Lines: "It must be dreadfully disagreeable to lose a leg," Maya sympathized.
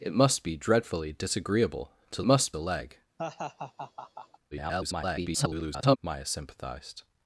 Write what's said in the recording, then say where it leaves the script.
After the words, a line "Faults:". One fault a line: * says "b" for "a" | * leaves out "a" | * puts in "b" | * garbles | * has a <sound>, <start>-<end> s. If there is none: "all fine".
"It must be dreadfully disagreeable to must a leg," [garbled] Maya sympathized.
Faults:
* says "must" for "lose"
* has a laugh, 3.2-4.4 s
* garbles